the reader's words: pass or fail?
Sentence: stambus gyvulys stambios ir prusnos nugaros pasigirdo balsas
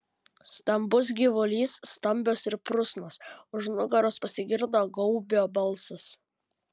fail